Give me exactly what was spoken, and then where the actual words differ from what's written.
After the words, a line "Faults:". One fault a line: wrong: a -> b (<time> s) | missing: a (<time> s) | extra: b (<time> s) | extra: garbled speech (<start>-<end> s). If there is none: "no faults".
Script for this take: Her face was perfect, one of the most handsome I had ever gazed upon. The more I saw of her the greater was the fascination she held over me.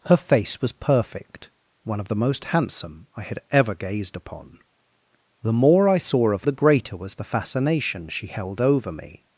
Her face was perfect, one of the most handsome I had ever gazed upon. The more I saw of the greater was the fascination she held over me.
Faults:
missing: her (6.5 s)